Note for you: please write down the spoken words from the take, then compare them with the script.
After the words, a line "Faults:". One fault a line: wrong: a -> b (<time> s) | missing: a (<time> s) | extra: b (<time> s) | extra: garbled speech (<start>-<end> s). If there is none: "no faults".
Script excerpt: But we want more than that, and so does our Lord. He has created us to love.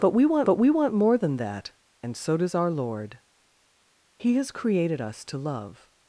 But we want but we want more than that, and so does our Lord. He has created us to love.
Faults:
extra: but we want (0.5 s)